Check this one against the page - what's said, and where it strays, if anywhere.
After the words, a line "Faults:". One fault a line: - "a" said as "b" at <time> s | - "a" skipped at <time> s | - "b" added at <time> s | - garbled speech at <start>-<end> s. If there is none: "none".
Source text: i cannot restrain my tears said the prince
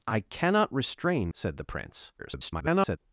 i cannot restrain said the prince [garbled]
Faults:
- "my tears" skipped at 1.3 s
- garbled speech at 2.2-3.0 s